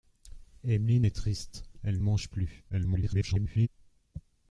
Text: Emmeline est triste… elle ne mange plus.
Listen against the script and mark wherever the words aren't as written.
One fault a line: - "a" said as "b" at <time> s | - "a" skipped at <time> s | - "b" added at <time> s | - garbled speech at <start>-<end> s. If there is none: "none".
- "ne" skipped at 2.0 s
- garbled speech at 2.7-3.7 s